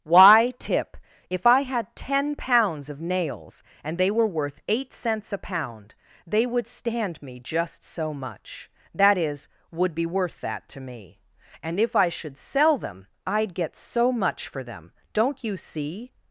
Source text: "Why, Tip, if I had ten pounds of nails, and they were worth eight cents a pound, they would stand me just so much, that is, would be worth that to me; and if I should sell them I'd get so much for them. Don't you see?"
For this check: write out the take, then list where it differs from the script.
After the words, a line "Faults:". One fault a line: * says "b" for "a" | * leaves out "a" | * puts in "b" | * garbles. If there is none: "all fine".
"Why, Tip, if I had ten pounds of nails, and they were worth eight cents a pound, they would stand me just so much, that is, would be worth that to me; and if I should sell them I'd get so much for them. Don't you see?"
Faults:
all fine